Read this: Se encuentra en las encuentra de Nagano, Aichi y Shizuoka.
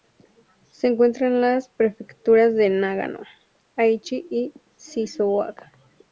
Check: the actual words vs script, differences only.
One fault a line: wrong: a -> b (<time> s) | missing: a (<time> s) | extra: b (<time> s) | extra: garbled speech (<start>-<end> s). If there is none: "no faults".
wrong: encuentra -> prefecturas (1.7 s)